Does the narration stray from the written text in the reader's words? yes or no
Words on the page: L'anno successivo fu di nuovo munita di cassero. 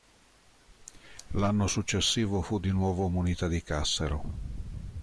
no